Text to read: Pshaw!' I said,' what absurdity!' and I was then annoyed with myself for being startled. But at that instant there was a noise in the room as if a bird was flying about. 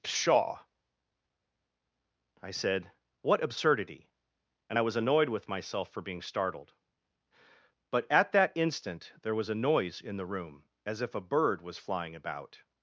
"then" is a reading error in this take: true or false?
true